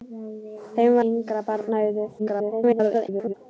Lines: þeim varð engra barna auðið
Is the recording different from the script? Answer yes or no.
yes